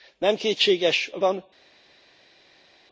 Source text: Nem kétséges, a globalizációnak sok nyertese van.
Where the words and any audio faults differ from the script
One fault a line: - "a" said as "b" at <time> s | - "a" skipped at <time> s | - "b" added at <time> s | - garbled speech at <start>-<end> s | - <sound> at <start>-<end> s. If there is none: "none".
- "globalizációnak sok nyertese" skipped at 1.2 s